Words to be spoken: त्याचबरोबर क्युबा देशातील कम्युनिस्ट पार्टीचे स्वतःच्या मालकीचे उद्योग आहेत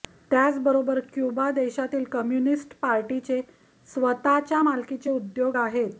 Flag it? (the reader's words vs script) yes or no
no